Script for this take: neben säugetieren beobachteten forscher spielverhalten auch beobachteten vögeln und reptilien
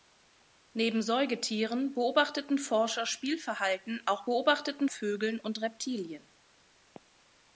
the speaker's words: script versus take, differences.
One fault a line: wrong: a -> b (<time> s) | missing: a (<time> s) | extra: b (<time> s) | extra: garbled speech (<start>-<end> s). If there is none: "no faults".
no faults